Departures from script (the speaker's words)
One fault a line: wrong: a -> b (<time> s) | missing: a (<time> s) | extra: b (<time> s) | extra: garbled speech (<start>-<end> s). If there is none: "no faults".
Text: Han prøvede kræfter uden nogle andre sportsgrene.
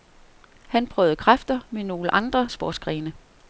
wrong: uden -> med (1.7 s)